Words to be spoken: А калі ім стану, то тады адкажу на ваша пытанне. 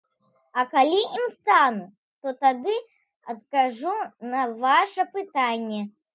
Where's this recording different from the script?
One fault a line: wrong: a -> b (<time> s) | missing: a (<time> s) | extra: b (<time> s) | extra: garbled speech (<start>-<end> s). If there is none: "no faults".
no faults